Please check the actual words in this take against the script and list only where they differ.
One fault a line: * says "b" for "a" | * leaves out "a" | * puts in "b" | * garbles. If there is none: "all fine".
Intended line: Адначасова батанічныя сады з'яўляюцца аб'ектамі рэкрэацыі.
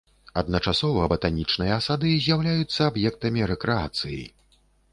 all fine